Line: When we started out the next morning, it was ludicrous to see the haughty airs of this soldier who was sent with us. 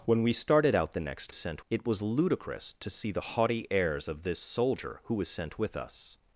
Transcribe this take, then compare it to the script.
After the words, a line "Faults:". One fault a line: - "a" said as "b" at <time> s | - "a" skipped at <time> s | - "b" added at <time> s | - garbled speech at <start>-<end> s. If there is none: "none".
When we started out the next sent, it was ludicrous to see the haughty airs of this soldier who was sent with us.
Faults:
- "morning" said as "sent" at 1.3 s